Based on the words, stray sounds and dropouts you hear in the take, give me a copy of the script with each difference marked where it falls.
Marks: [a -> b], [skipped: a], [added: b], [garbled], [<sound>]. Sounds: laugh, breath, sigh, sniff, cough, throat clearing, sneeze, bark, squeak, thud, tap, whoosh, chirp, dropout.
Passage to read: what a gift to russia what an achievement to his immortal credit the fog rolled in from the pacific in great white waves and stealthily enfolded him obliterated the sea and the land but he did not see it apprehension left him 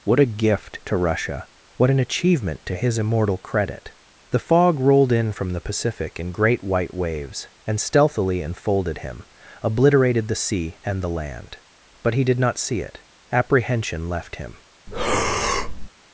what a gift to russia what an achievement to his immortal credit the fog rolled in from the pacific in great white waves and stealthily enfolded him obliterated the sea and the land but he did not see it apprehension left him [breath]